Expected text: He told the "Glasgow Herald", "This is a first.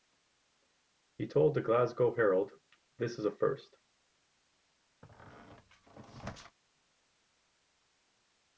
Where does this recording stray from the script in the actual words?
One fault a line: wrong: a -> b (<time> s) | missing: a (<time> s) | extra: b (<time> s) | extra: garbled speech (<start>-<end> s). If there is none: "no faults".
no faults